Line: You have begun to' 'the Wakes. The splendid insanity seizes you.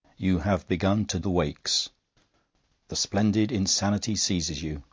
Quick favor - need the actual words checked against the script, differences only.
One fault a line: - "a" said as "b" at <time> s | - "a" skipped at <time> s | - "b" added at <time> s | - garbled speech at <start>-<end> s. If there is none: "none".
none